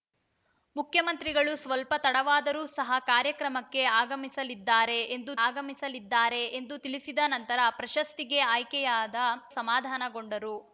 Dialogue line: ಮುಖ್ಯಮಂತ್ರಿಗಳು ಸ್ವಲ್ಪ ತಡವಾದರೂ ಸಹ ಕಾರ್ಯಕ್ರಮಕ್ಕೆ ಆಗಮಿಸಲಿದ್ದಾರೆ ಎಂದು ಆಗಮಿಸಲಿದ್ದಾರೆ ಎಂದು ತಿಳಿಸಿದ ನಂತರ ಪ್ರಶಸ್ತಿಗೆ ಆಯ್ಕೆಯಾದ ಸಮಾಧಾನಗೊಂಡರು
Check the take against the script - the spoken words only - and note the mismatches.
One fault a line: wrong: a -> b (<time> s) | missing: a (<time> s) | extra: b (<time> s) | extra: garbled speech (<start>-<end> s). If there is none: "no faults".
no faults